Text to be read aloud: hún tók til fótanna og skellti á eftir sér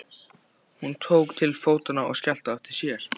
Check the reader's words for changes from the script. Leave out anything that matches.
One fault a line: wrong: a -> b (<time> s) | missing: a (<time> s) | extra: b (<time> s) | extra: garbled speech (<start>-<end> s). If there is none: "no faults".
no faults